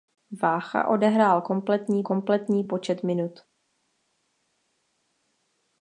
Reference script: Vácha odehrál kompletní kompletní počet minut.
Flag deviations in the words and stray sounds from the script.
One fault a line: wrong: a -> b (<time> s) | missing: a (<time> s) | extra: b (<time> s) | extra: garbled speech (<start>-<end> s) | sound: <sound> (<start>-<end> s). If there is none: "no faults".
no faults